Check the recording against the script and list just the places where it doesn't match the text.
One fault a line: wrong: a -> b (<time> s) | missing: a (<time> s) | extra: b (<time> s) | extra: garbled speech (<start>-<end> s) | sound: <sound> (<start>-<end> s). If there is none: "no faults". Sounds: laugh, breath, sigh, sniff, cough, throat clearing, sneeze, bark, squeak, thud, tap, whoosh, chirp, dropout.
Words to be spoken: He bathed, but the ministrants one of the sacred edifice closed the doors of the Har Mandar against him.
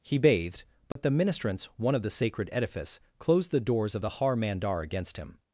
sound: dropout (0.9-1.0 s)